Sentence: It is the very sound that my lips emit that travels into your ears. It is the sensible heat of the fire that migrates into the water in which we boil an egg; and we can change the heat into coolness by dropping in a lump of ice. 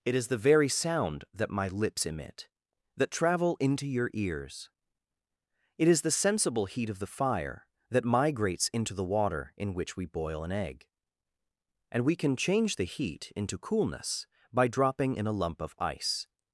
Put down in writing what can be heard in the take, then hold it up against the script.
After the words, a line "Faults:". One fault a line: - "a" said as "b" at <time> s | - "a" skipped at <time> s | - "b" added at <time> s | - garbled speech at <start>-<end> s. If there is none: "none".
It is the very sound that my lips emit that travel into your ears. It is the sensible heat of the fire that migrates into the water in which we boil an egg; and we can change the heat into coolness by dropping in a lump of ice.
Faults:
- "travels" said as "travel" at 3.1 s